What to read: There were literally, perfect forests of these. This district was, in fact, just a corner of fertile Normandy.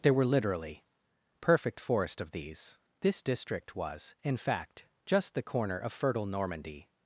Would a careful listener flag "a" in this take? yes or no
yes